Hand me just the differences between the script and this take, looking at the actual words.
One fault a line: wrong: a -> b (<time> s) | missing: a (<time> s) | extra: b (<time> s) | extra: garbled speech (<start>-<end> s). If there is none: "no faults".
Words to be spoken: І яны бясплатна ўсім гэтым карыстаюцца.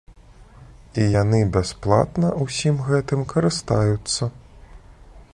no faults